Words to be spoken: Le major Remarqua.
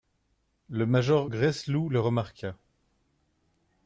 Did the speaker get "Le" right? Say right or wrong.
right